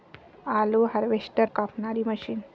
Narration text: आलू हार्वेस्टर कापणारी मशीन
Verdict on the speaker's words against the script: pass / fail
pass